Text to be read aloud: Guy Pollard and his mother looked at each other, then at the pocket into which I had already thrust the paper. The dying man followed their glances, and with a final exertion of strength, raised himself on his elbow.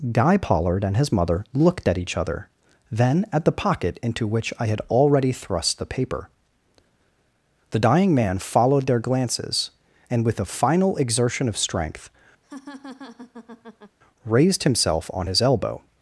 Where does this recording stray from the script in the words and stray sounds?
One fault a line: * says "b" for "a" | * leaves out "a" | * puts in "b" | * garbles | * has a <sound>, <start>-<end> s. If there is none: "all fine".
* has a laugh, 12.4-14.0 s